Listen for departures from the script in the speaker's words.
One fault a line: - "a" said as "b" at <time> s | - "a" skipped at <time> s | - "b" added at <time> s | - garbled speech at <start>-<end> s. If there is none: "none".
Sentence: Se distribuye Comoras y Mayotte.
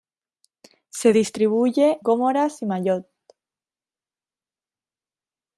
none